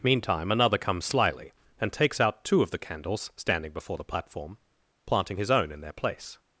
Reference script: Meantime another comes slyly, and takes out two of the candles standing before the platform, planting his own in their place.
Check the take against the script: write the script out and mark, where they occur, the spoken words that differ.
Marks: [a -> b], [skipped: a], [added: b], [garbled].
Meantime another comes slyly, and takes out two of the candles standing before the platform, planting his own in their place.